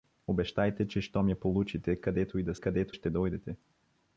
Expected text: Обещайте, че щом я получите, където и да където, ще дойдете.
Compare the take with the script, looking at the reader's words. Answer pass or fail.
pass